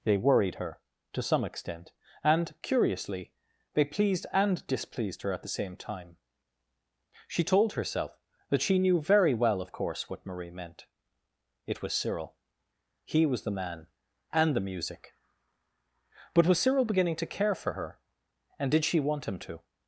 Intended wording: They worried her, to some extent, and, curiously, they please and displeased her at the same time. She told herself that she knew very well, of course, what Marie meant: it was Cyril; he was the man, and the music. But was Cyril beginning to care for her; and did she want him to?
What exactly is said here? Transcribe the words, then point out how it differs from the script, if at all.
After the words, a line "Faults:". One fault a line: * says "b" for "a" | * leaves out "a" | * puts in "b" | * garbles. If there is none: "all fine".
They worried her, to some extent, and, curiously, they pleased and displeased her at the same time. She told herself that she knew very well, of course, what Marie meant: it was Cyril; he was the man, and the music. But was Cyril beginning to care for her; and did she want him to?
Faults:
* says "pleased" for "please"